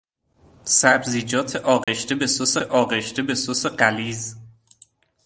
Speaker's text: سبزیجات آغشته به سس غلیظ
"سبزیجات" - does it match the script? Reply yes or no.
yes